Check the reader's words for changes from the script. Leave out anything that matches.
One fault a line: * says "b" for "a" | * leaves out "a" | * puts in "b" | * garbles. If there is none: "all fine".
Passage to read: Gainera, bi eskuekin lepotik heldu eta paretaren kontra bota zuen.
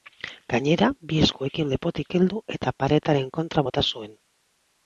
all fine